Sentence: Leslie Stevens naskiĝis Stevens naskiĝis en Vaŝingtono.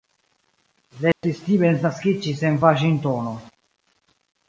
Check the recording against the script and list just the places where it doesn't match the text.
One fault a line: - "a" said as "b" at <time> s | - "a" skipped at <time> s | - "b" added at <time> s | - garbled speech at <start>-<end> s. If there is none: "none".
- "Stevens naskiĝis" skipped at 2.5 s